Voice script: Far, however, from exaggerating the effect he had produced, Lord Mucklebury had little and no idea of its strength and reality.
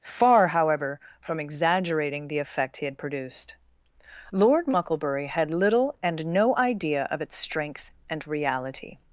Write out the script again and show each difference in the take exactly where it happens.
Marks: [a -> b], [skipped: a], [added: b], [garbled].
Far, however, from exaggerating the effect he had produced, Lord Mucklebury had little and no idea of its strength and reality.